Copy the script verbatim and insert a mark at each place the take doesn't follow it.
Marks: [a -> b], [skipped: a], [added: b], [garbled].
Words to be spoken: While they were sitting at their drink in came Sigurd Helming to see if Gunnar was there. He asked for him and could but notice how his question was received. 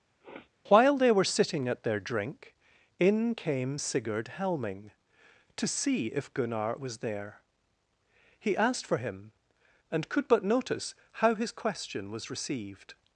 While they were sitting at their drink in came Sigurd Helming to see if Gunnar was there. He asked for him and could but notice how his question was received.